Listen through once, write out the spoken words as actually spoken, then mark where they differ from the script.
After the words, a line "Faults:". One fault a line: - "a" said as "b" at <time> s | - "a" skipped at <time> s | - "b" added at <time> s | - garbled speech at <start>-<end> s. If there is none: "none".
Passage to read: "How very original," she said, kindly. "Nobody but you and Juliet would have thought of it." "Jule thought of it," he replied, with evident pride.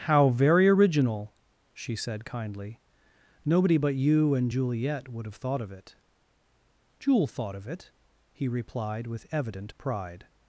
"How very original," she said, kindly. "Nobody but you and Juliet would have thought of it." "Jule thought of it," he replied, with evident pride.
Faults:
none